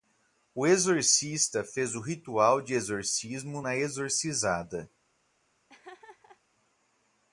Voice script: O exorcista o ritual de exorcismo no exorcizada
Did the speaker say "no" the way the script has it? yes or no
no